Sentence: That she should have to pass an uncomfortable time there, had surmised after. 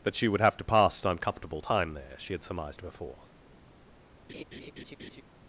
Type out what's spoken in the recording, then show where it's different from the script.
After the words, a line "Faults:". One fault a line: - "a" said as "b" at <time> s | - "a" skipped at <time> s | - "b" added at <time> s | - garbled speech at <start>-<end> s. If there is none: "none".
That she would have to pass an uncomfortable time there, she had surmised before.
Faults:
- "should" said as "would" at 0.3 s
- "she" added at 2.2 s
- "after" said as "before" at 2.8 s